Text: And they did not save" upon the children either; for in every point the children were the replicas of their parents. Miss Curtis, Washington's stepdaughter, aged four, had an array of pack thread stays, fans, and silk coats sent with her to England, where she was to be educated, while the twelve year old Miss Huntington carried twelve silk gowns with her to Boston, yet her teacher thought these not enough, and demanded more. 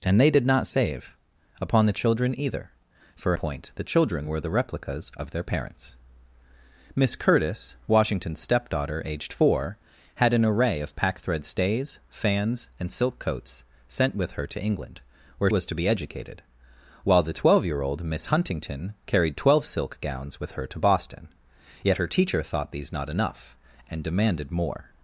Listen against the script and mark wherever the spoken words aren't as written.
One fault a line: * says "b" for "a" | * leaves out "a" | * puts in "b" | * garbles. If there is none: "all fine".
* leaves out "in every"
* leaves out "she"